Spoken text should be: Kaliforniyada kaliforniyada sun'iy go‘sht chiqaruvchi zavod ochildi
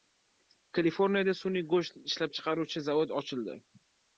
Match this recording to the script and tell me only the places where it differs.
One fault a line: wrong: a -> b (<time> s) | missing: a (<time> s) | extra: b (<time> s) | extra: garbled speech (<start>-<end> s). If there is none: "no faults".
missing: kaliforniyada (1.4 s)
extra: ishlab (2.1 s)